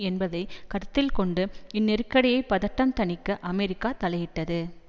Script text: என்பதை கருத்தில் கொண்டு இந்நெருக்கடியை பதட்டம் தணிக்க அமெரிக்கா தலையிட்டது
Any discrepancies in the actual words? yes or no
no